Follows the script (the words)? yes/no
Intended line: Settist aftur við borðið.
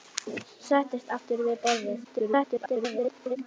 no